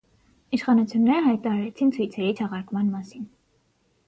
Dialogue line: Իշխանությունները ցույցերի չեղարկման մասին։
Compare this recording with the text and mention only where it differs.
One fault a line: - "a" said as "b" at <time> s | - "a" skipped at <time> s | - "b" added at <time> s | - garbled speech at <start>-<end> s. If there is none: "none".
- "հայտարարեցին" added at 1.3 s